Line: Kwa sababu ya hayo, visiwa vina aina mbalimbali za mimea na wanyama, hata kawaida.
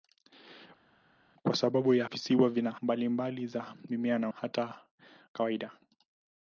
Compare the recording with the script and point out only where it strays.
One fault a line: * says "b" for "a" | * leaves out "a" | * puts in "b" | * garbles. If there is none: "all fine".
* leaves out "hayo"
* leaves out "aina"
* leaves out "wanyama"